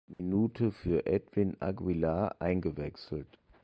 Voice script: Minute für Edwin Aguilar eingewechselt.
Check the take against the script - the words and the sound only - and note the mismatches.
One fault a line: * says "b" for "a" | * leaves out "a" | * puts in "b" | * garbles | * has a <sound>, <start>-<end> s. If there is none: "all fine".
* has a dropout, 0.1-0.2 s